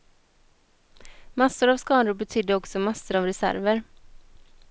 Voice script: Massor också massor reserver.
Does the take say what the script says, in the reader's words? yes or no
no